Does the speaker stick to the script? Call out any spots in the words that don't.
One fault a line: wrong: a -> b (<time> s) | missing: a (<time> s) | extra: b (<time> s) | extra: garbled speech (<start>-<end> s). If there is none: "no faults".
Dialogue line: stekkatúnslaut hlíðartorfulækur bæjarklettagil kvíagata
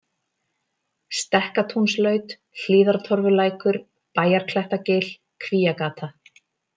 no faults